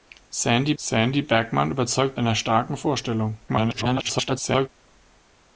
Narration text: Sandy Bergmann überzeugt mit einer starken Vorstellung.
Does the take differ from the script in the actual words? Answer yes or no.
yes